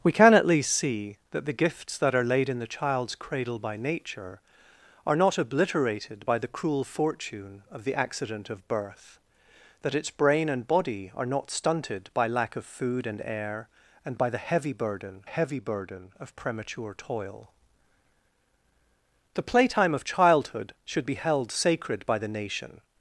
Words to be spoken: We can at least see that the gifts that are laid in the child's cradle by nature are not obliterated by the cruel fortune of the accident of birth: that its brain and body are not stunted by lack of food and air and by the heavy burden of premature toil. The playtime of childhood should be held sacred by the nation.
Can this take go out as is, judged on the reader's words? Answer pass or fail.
fail